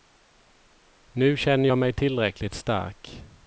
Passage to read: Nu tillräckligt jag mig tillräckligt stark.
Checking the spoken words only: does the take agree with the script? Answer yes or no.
no